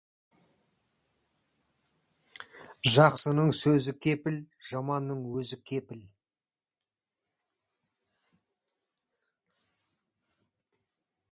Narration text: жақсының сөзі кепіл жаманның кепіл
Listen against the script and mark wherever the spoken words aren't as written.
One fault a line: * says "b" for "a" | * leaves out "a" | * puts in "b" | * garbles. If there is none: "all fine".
* puts in "өзі"